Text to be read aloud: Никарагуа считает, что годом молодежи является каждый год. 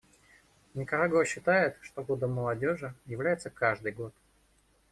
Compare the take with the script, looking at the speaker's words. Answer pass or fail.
pass